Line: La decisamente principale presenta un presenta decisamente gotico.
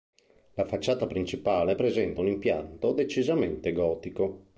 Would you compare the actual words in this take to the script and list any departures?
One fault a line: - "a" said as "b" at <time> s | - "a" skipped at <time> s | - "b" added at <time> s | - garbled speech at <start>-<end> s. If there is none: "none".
- "decisamente" said as "facciata" at 0.7 s
- "presenta" said as "impianto" at 2.3 s